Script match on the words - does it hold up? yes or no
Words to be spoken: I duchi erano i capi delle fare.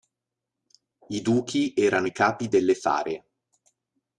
yes